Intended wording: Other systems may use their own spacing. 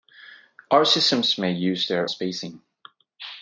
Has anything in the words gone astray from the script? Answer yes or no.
yes